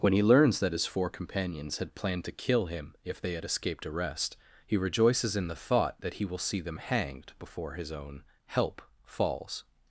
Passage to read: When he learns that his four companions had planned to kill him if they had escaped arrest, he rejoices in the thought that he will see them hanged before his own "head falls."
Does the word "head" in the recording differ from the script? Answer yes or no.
yes